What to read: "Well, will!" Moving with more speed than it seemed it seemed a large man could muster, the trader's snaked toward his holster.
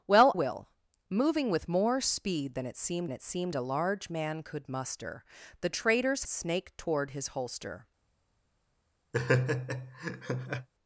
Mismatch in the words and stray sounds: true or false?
true